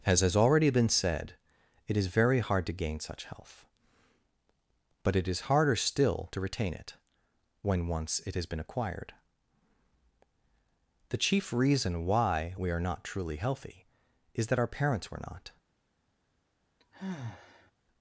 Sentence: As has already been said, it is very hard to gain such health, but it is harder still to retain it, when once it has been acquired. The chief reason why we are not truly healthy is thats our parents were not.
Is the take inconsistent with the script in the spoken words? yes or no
yes